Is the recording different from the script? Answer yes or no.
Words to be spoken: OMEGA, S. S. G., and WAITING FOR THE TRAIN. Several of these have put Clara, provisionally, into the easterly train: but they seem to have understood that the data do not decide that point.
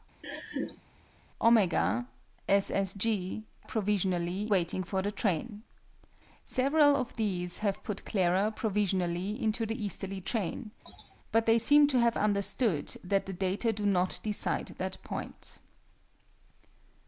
yes